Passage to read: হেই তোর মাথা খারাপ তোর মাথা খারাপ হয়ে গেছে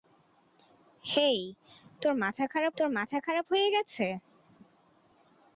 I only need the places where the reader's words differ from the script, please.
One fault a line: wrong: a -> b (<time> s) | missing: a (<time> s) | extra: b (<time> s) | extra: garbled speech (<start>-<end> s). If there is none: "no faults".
no faults